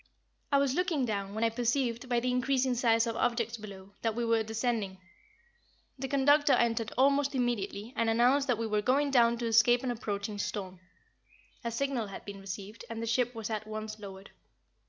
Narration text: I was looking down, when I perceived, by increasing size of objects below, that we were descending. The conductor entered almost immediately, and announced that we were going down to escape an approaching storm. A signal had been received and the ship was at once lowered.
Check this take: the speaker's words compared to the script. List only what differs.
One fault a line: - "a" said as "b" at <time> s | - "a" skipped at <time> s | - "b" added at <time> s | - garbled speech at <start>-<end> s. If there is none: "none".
- "the" added at 2.2 s